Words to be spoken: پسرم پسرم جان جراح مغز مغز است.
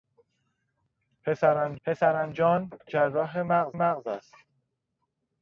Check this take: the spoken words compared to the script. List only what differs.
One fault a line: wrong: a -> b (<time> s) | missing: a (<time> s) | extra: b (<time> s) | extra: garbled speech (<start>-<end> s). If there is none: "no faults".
no faults